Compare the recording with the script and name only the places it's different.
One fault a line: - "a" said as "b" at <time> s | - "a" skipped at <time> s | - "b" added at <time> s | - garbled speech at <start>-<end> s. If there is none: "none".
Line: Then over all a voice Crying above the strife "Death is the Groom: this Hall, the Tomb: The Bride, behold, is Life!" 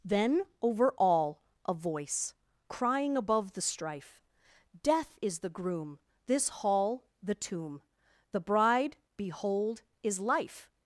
none